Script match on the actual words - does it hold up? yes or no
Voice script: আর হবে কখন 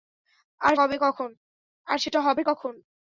yes